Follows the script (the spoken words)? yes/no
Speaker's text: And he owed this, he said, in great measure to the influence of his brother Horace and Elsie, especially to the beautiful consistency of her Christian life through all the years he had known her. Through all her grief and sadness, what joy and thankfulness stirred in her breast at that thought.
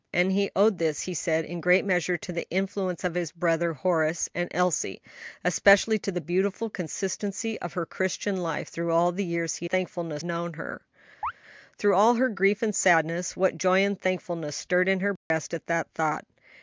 no